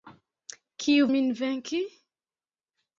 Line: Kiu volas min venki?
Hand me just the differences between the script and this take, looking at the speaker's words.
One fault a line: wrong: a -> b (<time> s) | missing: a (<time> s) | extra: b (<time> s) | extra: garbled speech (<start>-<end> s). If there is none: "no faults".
missing: volas (1.1 s)